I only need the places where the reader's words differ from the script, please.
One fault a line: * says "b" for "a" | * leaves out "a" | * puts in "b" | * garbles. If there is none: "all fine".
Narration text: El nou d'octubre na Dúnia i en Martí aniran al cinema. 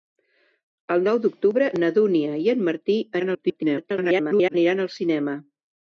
* garbles